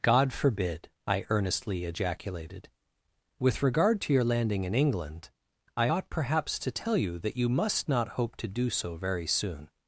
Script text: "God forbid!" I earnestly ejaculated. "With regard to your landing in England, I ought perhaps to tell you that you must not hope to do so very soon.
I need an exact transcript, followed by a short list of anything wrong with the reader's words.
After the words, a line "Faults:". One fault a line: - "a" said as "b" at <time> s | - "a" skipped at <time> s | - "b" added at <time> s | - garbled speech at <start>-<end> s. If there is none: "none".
"God forbid!" I earnestly ejaculated. "With regard to your landing in England, I ought perhaps to tell you that you must not hope to do so very soon.
Faults:
none